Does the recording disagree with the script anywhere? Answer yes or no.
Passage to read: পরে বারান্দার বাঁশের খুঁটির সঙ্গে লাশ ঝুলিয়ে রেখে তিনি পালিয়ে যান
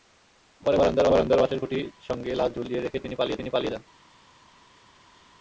yes